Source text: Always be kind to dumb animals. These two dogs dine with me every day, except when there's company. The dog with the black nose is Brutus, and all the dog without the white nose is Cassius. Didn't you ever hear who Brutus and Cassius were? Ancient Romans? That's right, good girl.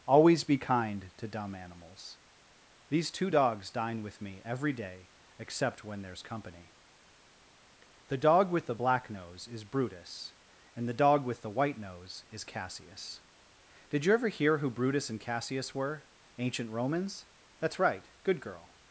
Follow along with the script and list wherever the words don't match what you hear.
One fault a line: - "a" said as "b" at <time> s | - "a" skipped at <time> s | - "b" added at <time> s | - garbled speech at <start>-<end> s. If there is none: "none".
- "all" skipped at 10.9 s
- "without" said as "with" at 11.2 s
- "Didn't" said as "Did" at 13.9 s